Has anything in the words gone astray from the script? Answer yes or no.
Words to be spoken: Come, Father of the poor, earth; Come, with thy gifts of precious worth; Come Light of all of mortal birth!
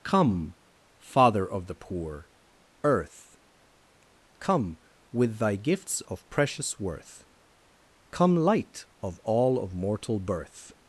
no